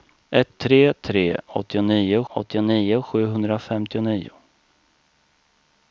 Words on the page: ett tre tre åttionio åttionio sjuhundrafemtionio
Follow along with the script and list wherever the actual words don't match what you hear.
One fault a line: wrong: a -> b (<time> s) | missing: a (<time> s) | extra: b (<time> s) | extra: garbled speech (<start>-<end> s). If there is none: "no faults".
no faults